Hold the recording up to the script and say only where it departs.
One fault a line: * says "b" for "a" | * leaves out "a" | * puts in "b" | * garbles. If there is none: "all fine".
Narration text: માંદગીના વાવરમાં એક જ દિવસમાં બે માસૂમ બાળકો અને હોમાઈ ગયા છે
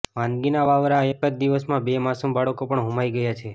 * says "પણ" for "અને"